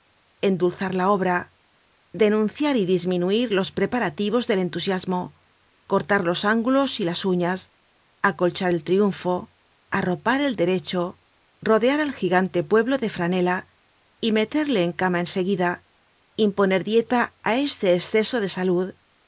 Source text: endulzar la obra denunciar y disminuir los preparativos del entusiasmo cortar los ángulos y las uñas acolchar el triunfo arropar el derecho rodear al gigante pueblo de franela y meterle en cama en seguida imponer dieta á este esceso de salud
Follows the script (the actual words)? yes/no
yes